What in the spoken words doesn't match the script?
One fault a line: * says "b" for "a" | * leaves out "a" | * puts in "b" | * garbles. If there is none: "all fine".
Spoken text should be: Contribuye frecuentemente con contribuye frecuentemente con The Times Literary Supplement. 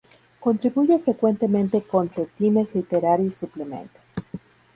* leaves out "contribuye frecuentemente con"